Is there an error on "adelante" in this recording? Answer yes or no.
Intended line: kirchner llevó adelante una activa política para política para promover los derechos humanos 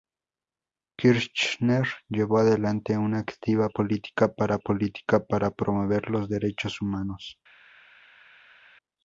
no